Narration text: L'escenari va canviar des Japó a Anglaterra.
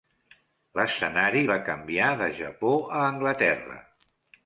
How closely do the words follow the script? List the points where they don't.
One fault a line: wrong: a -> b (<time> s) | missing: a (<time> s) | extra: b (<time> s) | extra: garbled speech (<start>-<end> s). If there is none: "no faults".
wrong: des -> de (2.2 s)